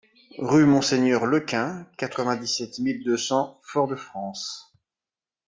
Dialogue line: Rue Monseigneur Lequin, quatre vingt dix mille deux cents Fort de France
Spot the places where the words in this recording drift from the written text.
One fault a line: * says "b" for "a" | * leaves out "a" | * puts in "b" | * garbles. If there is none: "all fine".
* puts in "sept"